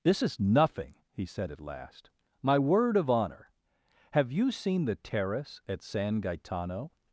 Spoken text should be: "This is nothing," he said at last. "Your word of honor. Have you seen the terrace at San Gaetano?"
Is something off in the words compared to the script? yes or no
yes